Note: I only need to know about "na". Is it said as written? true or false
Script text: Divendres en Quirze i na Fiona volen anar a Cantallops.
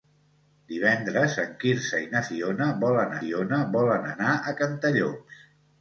true